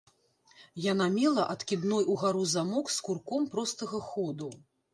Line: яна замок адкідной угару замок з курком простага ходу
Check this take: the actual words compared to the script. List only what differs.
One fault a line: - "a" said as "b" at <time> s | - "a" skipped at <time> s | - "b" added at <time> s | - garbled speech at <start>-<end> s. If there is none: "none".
- "замок" said as "мела" at 1.2 s